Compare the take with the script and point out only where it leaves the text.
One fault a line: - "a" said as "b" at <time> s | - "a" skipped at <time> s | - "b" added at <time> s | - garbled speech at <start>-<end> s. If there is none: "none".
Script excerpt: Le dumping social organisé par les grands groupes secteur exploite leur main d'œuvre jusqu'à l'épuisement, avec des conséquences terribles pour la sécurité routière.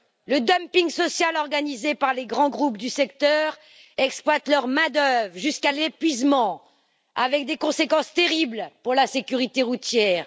- "du" added at 2.8 s